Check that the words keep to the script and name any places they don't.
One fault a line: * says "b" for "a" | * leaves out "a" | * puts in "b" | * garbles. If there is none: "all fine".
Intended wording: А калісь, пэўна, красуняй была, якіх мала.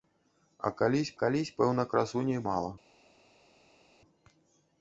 * puts in "калісь"
* leaves out "была якіх"